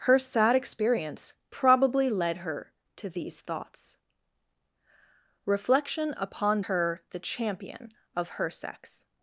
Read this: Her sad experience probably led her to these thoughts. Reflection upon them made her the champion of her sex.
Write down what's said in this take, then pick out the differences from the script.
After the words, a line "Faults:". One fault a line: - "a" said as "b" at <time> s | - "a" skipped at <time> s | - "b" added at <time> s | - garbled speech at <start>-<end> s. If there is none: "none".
Her sad experience probably led her to these thoughts. Reflection upon her the champion of her sex.
Faults:
- "them made" skipped at 6.6 s